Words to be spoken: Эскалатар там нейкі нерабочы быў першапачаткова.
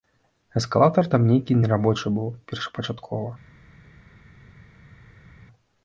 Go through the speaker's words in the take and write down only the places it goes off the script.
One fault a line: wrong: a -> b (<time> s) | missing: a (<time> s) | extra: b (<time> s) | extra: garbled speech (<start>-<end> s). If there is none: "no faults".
no faults